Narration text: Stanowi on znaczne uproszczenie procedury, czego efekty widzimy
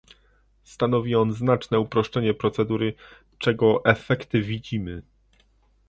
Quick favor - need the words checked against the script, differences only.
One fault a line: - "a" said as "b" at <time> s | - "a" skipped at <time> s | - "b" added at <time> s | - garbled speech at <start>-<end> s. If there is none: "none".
none